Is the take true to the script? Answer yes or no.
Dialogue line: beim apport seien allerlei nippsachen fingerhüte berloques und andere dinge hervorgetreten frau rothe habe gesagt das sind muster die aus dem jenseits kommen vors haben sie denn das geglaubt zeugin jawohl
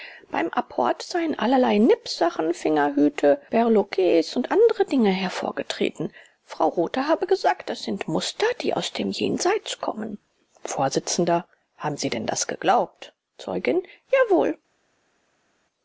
yes